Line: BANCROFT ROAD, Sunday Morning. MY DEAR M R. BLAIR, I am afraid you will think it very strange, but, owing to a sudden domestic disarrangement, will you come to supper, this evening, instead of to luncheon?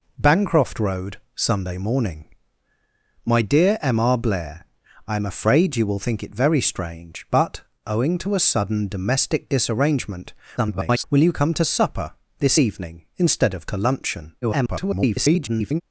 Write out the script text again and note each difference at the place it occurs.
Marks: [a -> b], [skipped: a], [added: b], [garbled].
BANCROFT ROAD, Sunday Morning. MY DEAR M R. BLAIR, I am afraid you will think it very strange, but, owing to a sudden domestic disarrangement, [garbled] will you come to supper, this evening, instead of to luncheon? [garbled]